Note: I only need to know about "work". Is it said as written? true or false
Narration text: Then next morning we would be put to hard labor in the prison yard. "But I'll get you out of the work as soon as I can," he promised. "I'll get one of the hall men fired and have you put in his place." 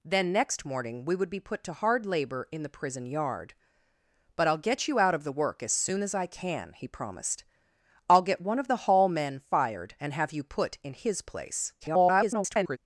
true